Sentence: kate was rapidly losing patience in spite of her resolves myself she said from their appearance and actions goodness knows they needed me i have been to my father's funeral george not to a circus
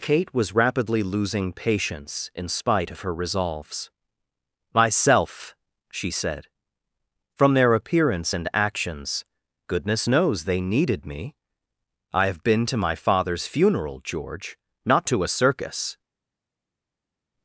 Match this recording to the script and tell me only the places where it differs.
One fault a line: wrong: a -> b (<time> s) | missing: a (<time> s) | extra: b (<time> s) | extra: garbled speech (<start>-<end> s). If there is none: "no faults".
no faults